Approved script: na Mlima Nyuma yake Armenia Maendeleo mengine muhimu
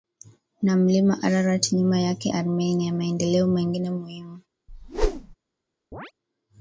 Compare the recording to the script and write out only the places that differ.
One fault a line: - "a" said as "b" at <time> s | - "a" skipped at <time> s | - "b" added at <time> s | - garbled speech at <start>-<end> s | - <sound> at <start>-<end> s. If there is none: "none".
- "Ararat" added at 1.2 s
- whoosh at 4.7-5.4 s
- chirp at 5.9-6.1 s